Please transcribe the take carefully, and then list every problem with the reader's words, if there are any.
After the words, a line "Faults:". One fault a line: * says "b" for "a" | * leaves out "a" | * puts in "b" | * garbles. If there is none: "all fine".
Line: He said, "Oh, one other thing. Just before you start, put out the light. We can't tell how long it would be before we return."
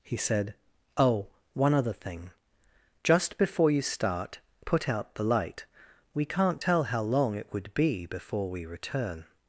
He said, "Oh, one other thing. Just before you start, put out the light. We can't tell how long it would be before we return."
Faults:
all fine